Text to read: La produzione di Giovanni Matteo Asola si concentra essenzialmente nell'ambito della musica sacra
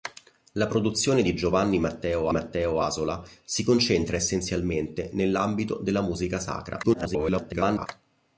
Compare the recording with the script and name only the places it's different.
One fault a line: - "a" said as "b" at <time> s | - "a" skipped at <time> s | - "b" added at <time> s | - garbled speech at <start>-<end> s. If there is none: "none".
- "Matteo" added at 2.3 s
- garbled speech at 6.8-7.9 s